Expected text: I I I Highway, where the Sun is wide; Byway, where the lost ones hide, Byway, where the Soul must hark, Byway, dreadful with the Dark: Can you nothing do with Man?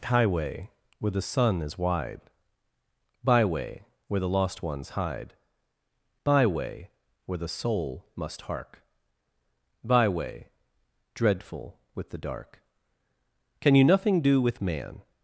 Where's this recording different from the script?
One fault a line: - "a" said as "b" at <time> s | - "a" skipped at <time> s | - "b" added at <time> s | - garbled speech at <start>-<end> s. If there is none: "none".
- "I I I" skipped at 0.0 s